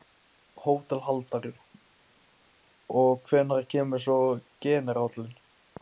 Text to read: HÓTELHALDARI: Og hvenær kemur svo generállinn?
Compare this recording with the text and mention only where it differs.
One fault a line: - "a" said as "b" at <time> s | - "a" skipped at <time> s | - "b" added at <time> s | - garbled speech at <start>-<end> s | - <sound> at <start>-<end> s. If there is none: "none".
none